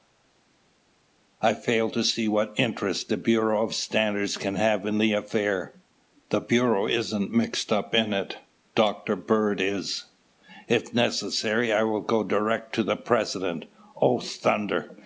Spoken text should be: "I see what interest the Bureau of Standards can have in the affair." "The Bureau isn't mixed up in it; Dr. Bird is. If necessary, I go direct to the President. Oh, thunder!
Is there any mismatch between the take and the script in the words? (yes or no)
yes